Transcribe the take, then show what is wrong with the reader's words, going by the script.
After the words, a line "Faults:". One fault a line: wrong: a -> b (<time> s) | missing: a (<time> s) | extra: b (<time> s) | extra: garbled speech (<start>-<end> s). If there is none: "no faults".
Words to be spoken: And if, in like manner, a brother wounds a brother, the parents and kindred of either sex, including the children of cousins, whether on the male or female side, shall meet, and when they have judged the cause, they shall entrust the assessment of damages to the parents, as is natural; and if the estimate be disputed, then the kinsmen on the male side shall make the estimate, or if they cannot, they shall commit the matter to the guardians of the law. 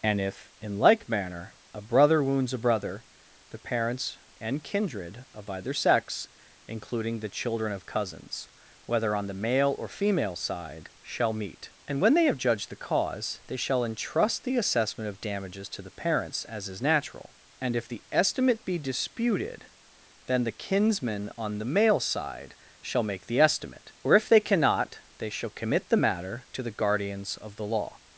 And if, in like manner, a brother wounds a brother, the parents and kindred of either sex, including the children of cousins, whether on the male or female side, shall meet, and when they have judged the cause, they shall entrust the assessment of damages to the parents, as is natural; and if the estimate be disputed, then the kinsmen on the male side shall make the estimate, or if they cannot, they shall commit the matter to the guardians of the law.
Faults:
no faults